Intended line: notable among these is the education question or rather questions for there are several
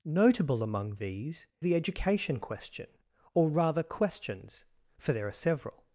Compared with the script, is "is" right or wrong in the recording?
wrong